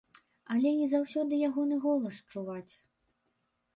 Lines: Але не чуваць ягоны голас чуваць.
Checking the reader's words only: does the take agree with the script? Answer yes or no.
no